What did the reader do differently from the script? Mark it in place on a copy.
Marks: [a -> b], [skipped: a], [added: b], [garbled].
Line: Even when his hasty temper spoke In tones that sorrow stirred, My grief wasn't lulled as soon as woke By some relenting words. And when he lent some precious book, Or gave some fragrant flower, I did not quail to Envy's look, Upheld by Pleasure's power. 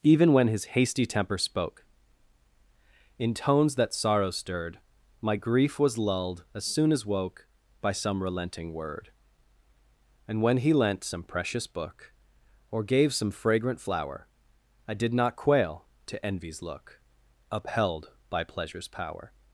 Even when his hasty temper spoke In tones that sorrow stirred, My grief [wasn't -> was] lulled as soon as woke By some relenting [words. -> word] And when he lent some precious book, Or gave some fragrant flower, I did not quail to Envy's look, Upheld by Pleasure's power.